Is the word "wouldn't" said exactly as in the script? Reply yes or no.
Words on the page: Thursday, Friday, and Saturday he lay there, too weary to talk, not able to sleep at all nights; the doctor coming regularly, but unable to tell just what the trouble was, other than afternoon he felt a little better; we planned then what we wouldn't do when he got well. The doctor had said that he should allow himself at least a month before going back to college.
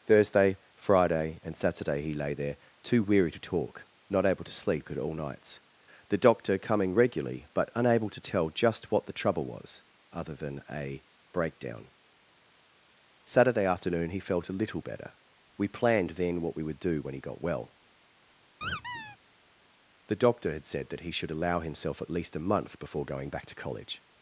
no